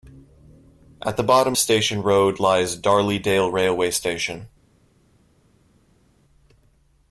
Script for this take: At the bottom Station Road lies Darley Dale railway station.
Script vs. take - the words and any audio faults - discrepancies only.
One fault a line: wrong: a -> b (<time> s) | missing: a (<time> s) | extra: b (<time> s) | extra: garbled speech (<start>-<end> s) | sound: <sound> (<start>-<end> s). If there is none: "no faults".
no faults